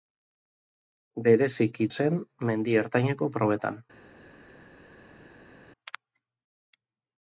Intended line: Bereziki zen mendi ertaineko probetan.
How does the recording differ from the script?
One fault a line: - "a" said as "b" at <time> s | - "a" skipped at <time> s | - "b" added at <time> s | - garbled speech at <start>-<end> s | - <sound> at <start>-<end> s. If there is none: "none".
none